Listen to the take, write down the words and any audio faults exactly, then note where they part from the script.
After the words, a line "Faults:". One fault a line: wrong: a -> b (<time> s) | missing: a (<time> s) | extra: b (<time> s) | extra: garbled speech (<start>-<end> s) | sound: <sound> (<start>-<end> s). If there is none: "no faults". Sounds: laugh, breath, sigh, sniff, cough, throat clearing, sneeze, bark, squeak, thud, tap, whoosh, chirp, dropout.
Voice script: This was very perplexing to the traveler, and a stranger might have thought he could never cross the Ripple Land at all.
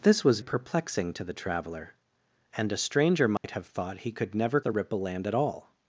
This was perplexing to the traveler, and a stranger might have thought he could never the Ripple Land at all.
Faults:
missing: very (0.4 s)
sound: dropout (3.4-3.4 s)
missing: cross (4.6 s)